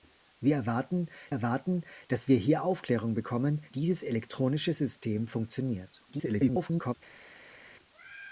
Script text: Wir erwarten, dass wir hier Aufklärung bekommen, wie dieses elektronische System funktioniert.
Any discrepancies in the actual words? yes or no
yes